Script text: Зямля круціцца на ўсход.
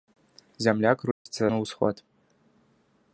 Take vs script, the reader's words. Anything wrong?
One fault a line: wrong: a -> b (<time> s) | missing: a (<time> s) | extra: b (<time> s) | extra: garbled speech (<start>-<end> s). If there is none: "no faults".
no faults